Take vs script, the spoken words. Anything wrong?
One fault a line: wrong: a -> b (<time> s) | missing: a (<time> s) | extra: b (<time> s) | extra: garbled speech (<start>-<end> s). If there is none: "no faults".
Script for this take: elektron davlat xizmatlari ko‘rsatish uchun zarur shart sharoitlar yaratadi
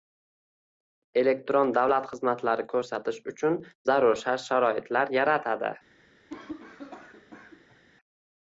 no faults